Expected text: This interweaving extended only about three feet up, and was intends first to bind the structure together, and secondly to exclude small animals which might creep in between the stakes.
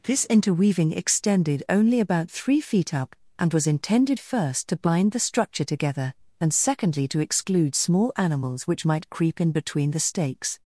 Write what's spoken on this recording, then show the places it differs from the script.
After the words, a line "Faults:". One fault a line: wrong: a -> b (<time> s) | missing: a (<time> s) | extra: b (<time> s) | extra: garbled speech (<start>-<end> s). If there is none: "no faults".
This interweaving extended only about three feet up, and was intended first to bind the structure together, and secondly to exclude small animals which might creep in between the stakes.
Faults:
wrong: intends -> intended (3.7 s)